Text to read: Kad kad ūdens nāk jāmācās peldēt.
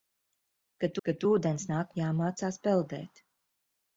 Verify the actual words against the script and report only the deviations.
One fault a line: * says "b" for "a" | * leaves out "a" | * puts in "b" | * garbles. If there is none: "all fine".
all fine